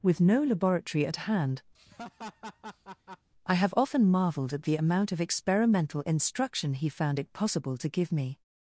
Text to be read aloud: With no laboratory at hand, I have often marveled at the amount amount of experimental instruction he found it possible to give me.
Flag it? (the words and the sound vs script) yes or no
yes